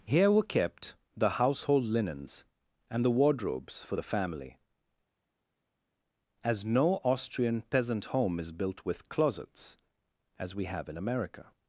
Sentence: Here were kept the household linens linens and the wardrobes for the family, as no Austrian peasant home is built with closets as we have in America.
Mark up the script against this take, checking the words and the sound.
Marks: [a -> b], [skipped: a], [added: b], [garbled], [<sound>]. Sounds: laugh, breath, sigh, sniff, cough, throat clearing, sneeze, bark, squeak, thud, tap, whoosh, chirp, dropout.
Here were kept the household linens [skipped: linens] and the wardrobes for the family, as no Austrian peasant home is built with closets as we have in America.